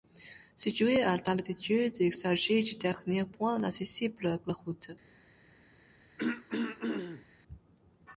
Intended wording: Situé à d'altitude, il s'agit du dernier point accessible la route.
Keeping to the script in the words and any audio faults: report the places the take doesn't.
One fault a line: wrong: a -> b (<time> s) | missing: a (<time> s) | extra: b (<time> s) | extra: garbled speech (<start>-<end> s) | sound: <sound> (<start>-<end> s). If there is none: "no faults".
sound: throat clearing (6.2-7.2 s)